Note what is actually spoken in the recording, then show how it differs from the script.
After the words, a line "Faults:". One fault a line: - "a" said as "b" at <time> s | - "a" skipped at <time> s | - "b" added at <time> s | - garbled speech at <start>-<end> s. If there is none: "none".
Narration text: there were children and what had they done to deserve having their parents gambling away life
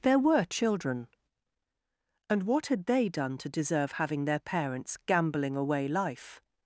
there were children and what had they done to deserve having their parents gambling away life
Faults:
none